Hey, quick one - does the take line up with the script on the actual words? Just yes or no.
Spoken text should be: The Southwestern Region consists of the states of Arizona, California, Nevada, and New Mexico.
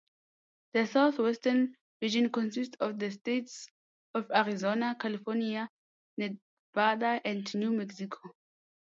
yes